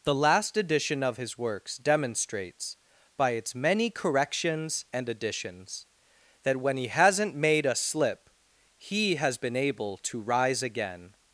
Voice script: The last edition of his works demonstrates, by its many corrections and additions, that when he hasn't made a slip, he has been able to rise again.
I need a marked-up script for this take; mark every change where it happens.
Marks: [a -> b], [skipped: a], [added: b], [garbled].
The last edition of his works demonstrates, by its many corrections and additions, that when he hasn't made a slip, he has been able to rise again.